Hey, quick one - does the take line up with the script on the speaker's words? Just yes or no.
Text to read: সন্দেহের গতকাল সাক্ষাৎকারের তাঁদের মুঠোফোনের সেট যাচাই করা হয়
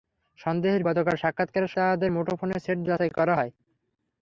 yes